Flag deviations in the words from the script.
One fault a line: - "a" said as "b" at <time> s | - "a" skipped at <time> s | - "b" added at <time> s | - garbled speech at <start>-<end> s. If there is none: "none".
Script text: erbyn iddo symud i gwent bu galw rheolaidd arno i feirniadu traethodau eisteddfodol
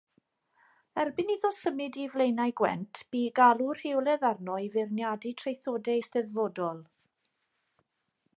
- "flaenau" added at 2.1 s